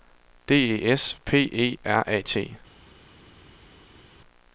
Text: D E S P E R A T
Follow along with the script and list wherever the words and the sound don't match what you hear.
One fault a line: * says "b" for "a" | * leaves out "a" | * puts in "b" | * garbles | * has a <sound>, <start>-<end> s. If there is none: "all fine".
all fine